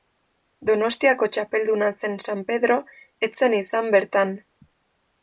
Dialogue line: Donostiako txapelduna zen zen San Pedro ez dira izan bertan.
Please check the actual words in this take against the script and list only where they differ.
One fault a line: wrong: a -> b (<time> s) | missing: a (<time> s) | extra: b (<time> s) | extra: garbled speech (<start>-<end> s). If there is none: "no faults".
missing: zen (2.2 s)
wrong: dira -> zen (3.4 s)